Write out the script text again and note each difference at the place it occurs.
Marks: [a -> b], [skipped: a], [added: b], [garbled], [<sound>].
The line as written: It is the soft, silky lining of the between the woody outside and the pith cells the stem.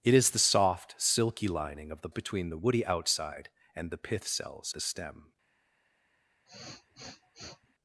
It is the soft, silky lining of the between the woody outside and the pith cells the stem. [sniff]